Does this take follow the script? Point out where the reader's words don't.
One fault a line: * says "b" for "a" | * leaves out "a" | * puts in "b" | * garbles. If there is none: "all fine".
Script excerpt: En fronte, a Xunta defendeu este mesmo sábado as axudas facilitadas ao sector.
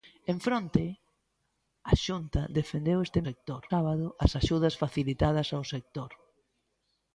* says "sector" for "mesmo"